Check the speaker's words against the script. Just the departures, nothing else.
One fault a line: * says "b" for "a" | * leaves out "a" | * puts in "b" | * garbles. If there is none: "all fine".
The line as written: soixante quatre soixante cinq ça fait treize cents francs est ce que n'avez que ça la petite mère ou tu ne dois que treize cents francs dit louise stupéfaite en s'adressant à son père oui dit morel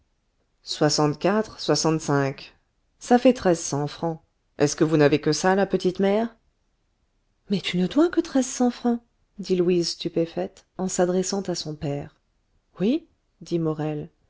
* puts in "vous"
* says "mais" for "ou"